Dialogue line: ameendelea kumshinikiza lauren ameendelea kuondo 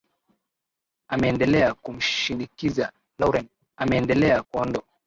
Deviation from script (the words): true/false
false